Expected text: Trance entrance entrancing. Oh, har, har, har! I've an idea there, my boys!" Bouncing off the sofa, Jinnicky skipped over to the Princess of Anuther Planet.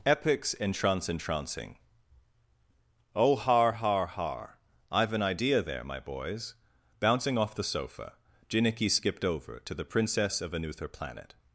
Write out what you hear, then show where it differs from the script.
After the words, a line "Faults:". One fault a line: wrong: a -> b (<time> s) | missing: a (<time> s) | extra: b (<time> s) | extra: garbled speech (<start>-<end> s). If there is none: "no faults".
Epics entrance entrancing. Oh, har, har, har! I've an idea there, my boys!" Bouncing off the sofa, Jinnicky skipped over to the Princess of Anuther Planet.
Faults:
wrong: Trance -> Epics (0.0 s)